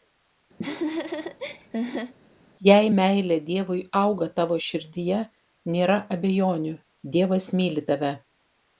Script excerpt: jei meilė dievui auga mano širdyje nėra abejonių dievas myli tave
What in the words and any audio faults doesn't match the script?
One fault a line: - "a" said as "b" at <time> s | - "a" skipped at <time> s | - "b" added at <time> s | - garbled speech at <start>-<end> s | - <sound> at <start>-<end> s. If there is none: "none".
- laugh at 0.6-2.1 s
- "mano" said as "tavo" at 4.4 s